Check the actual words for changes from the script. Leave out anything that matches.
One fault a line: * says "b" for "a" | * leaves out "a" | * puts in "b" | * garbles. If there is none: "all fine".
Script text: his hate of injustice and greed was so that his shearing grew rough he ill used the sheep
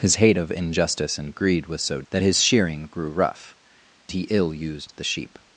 all fine